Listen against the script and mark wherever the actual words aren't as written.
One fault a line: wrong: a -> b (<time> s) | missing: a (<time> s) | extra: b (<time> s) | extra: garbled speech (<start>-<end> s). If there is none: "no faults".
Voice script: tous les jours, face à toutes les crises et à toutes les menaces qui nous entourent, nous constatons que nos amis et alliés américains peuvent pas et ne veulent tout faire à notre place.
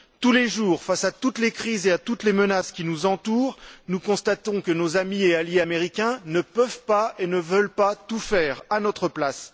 extra: ne (6.2 s)
extra: pas (7.7 s)